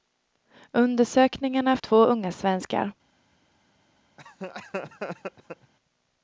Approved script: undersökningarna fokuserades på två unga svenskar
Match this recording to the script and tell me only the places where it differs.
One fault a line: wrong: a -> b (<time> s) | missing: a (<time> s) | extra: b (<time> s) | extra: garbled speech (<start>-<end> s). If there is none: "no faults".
missing: fokuserades på (1.8 s)